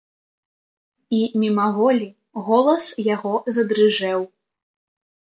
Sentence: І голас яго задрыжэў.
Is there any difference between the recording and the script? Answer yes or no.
yes